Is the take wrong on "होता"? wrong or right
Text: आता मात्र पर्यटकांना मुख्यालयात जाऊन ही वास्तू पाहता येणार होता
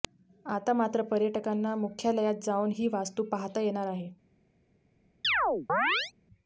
wrong